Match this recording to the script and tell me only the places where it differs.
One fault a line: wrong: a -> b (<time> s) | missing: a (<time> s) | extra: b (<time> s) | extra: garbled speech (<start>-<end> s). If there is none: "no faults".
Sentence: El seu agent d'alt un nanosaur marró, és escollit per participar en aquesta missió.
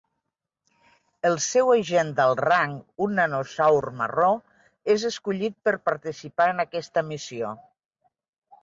extra: rang (2.5 s)